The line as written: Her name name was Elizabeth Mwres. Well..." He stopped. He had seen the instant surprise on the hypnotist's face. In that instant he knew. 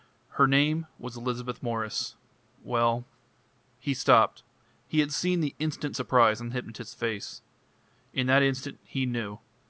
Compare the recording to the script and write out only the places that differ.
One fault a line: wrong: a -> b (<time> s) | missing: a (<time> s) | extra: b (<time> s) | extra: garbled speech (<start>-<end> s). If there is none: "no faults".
missing: name (0.9 s)